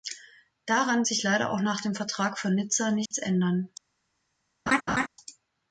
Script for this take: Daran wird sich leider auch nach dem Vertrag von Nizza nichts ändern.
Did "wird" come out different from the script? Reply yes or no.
yes